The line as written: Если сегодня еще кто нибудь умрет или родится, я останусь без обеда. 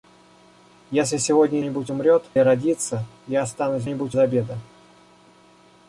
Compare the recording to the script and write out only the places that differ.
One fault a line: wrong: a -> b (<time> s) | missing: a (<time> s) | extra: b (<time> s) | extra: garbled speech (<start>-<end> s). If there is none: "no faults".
missing: еще кто (1.6 s)
missing: или (2.2 s)
wrong: без -> нибудь (3.8 s)